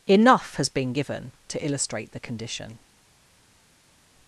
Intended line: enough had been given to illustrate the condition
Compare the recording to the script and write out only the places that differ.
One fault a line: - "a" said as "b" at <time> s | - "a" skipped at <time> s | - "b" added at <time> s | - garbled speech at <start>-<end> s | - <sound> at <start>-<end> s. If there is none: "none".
- "had" said as "has" at 0.6 s